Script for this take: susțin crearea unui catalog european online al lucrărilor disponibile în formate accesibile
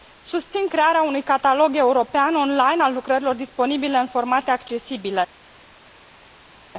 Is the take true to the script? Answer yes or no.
yes